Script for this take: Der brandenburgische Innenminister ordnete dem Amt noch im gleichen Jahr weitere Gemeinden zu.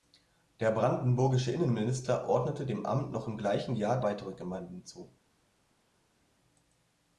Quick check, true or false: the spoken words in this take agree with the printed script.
true